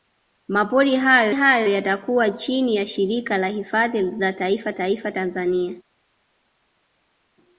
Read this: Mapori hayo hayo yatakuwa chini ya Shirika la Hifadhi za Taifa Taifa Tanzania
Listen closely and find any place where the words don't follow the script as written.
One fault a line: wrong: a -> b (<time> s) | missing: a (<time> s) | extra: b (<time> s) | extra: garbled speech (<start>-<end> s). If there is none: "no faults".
no faults